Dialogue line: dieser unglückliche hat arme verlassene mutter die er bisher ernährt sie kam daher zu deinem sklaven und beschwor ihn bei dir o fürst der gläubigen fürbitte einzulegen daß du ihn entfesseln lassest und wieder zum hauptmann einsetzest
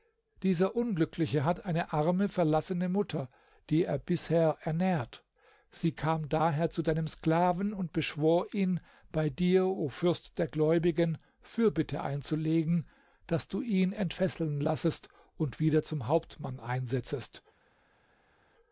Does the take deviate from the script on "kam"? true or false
false